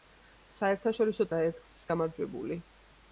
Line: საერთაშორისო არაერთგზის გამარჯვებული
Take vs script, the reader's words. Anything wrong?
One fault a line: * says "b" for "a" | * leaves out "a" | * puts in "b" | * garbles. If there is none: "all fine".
all fine